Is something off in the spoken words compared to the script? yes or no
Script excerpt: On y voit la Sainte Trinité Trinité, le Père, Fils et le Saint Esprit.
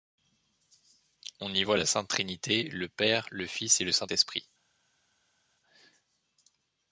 yes